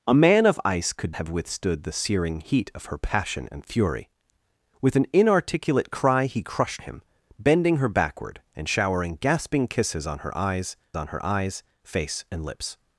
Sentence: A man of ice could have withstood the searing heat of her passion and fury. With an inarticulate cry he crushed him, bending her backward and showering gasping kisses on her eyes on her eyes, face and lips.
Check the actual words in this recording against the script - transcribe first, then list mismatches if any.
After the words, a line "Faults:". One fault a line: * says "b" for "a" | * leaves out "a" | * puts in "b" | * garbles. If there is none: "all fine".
A man of ice could have withstood the searing heat of her passion and fury. With an inarticulate cry he crushed him, bending her backward and showering gasping kisses on her eyes on her eyes, face and lips.
Faults:
all fine